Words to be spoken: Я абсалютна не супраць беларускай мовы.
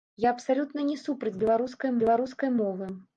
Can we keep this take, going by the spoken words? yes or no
no